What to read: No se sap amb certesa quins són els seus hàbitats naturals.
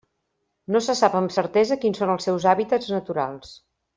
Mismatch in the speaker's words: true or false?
false